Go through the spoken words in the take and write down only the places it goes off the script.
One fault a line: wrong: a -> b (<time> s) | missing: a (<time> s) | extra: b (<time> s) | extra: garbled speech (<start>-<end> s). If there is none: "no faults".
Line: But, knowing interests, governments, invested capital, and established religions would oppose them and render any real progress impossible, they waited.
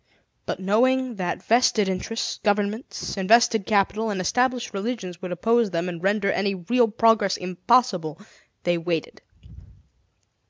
extra: that vested (1.2 s)